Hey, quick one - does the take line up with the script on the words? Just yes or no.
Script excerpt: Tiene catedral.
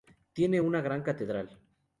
no